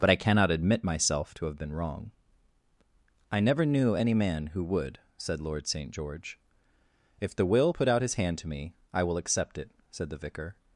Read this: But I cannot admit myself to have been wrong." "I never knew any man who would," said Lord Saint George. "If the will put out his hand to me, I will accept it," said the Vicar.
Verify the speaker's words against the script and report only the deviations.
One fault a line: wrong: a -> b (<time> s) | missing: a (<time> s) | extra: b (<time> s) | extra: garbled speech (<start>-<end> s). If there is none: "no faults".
no faults